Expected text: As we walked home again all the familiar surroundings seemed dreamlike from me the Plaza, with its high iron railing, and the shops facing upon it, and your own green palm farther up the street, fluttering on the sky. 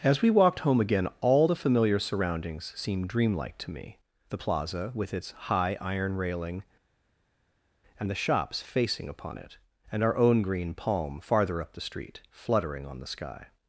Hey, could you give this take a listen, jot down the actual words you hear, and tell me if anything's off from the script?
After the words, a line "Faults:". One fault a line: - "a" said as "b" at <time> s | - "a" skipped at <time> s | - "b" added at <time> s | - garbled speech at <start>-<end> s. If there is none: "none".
As we walked home again all the familiar surroundings seemed dreamlike to me the Plaza, with its high iron railing, and the shops facing upon it, and our own green palm farther up the street, fluttering on the sky.
Faults:
- "from" said as "to" at 3.6 s
- "your" said as "our" at 10.0 s